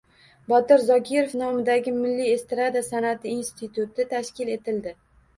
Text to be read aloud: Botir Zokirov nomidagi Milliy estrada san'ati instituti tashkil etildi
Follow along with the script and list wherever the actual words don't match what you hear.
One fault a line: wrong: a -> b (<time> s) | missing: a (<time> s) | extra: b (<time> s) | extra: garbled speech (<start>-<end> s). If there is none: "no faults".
no faults